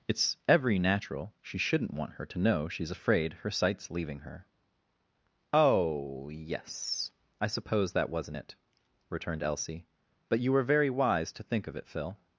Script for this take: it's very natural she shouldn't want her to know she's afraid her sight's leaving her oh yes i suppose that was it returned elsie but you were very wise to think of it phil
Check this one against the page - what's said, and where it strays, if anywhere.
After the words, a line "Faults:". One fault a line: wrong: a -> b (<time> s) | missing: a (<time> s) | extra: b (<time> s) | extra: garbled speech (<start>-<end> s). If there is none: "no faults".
it's every natural she shouldn't want her to know she's afraid her sight's leaving her oh yes i suppose that wasn't it returned elsie but you were very wise to think of it phil
Faults:
wrong: very -> every (0.5 s)
wrong: was -> wasn't (8.1 s)